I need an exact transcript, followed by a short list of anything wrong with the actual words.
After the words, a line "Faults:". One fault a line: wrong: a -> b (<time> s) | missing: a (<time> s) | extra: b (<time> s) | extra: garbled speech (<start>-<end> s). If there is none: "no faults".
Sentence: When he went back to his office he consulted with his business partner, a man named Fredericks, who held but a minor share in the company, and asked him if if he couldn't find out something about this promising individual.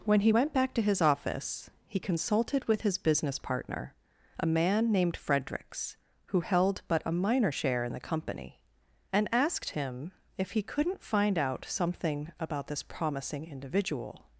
When he went back to his office he consulted with his business partner, a man named Fredericks, who held but a minor share in the company, and asked him if he couldn't find out something about this promising individual.
Faults:
missing: if (10.5 s)